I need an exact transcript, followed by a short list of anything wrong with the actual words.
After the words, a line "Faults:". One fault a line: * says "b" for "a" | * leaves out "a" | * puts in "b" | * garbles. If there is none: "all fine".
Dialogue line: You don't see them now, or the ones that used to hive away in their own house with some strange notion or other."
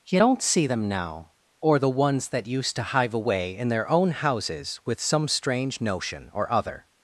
You don't see them now, or the ones that used to hive away in their own houses with some strange notion or other."
Faults:
* says "houses" for "house"